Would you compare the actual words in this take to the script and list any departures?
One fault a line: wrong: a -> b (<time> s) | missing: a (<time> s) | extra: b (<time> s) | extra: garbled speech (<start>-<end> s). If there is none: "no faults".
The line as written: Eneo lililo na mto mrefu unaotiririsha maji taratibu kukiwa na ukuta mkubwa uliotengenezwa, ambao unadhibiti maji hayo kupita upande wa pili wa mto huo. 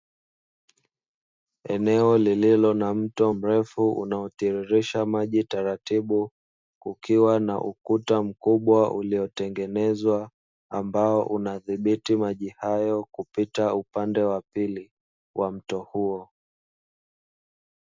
no faults